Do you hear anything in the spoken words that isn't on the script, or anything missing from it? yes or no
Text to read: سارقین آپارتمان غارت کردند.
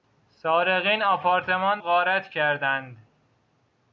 no